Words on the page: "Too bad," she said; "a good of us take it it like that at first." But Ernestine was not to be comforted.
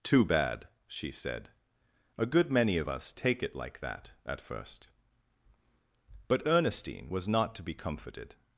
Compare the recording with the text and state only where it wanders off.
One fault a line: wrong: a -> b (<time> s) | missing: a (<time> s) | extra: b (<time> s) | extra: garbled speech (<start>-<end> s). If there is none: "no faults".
extra: many (2.5 s)
missing: it (3.5 s)